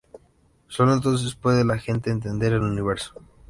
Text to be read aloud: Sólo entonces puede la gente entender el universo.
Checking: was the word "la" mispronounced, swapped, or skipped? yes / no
no